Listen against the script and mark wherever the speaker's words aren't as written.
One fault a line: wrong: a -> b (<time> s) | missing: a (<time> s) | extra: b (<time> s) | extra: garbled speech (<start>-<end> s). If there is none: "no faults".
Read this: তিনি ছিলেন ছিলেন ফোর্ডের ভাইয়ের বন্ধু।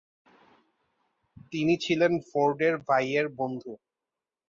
missing: ছিলেন (2.1 s)